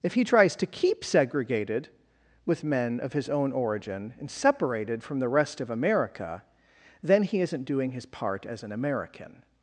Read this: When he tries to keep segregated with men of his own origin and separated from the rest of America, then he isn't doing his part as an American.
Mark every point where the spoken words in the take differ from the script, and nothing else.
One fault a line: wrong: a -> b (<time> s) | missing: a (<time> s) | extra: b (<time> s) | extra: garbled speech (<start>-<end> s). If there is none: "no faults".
wrong: When -> If (0.0 s)